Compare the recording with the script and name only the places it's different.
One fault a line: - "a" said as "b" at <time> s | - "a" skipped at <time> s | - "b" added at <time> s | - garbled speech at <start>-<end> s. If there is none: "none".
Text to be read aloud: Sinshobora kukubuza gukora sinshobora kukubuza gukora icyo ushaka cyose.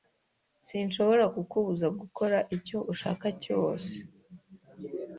- "sinshobora kukubuza gukora" skipped at 2.4 s